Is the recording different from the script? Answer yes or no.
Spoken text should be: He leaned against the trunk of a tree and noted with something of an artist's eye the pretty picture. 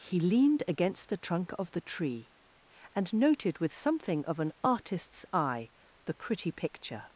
yes